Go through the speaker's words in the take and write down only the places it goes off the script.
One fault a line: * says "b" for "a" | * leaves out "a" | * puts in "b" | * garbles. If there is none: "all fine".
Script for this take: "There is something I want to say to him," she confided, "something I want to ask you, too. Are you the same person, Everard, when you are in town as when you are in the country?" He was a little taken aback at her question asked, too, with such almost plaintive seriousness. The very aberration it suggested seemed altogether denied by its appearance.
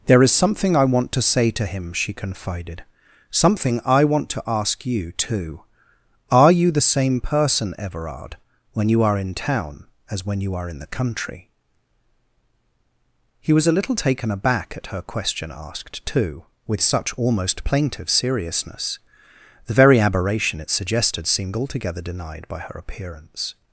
* says "her" for "its"